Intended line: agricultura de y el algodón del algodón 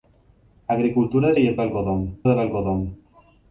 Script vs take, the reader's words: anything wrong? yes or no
no